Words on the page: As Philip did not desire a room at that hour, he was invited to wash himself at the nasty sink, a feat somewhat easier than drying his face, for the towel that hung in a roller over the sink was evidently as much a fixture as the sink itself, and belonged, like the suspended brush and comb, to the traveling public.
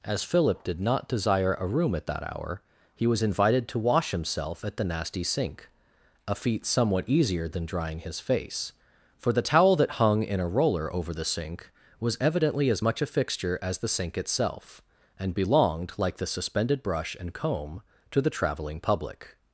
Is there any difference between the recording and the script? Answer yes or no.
no